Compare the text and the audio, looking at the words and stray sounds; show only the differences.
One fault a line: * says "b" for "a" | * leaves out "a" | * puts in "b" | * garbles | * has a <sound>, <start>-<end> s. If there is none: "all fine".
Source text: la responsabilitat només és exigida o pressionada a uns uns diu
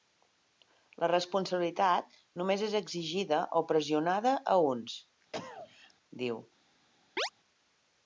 * leaves out "uns"
* has a cough, 5.3-5.9 s
* has a chirp, 7.2-7.3 s